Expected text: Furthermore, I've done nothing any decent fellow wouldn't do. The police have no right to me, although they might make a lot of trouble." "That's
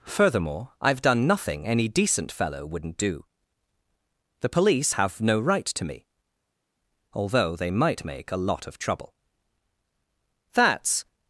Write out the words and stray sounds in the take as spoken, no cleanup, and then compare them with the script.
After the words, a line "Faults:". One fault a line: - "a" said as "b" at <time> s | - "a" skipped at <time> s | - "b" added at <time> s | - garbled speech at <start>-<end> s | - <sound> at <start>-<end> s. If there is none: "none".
Furthermore, I've done nothing any decent fellow wouldn't do. The police have no right to me, although they might make a lot of trouble." "That's
Faults:
none